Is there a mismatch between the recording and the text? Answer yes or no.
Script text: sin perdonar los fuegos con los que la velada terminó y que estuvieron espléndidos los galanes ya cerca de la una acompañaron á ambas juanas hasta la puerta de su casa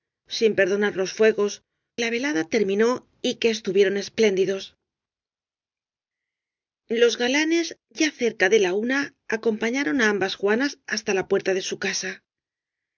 yes